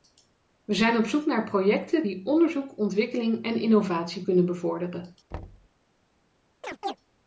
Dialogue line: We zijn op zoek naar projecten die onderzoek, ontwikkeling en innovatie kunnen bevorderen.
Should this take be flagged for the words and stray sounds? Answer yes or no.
yes